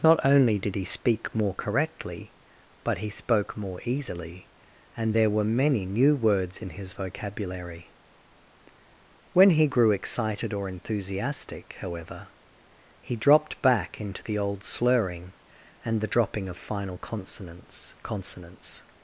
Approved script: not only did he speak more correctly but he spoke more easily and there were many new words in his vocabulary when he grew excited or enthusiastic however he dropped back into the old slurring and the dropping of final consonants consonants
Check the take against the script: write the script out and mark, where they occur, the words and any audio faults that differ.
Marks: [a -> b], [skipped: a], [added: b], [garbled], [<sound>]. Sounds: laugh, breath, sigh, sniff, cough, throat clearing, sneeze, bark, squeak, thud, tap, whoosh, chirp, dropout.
not only did he speak more correctly but he spoke more easily and there were many new words in his vocabulary when he grew excited or enthusiastic however he dropped back into the old slurring and the dropping of final consonants consonants